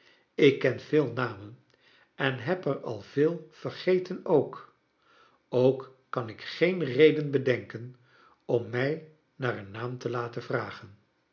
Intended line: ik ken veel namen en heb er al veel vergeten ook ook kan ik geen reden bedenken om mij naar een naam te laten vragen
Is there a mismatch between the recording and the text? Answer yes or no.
no